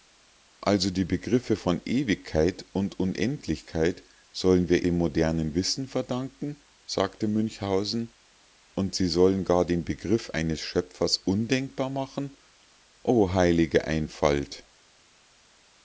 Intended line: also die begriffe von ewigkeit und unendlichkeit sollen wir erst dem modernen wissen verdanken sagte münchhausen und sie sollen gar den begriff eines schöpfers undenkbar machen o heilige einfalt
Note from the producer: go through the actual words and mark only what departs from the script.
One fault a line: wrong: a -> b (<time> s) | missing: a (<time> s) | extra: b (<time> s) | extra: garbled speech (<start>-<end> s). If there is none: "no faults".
missing: erst (4.9 s)